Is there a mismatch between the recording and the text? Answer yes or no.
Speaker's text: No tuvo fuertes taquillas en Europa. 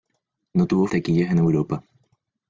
yes